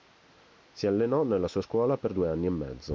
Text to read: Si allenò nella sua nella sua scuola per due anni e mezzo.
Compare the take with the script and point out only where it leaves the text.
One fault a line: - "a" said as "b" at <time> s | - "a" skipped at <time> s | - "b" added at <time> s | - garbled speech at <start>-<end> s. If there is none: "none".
- "nella sua" skipped at 1.6 s